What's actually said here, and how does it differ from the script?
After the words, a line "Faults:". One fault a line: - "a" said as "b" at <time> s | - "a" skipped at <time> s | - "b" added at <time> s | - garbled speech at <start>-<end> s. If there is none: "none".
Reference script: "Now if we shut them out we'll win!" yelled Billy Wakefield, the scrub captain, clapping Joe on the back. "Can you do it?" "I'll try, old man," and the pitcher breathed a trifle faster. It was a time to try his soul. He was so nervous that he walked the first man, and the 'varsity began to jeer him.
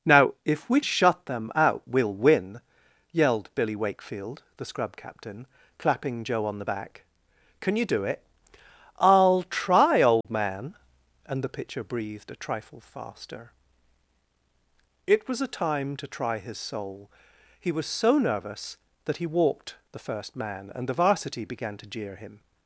"Now if we shut them out we'll win!" yelled Billy Wakefield, the scrub captain, clapping Joe on the back. "Can you do it?" "I'll try, old man," and the pitcher breathed a trifle faster. It was a time to try his soul. He was so nervous that he walked the first man, and the 'varsity began to jeer him.
Faults:
none